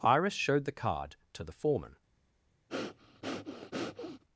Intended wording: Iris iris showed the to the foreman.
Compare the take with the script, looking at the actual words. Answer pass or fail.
fail